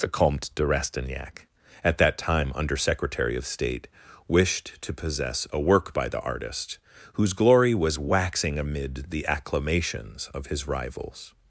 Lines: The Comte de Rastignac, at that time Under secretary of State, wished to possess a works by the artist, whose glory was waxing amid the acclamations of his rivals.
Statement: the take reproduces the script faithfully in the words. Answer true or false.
false